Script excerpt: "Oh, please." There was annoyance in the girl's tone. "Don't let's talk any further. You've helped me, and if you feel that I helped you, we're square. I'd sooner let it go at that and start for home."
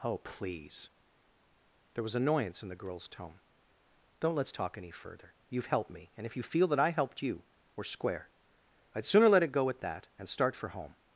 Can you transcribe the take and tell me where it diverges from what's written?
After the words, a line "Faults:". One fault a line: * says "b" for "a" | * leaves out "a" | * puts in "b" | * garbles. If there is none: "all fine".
"Oh, please." There was annoyance in the girl's tone. "Don't let's talk any further. You've helped me, and if you feel that I helped you, we're square. I'd sooner let it go at that and start for home."
Faults:
all fine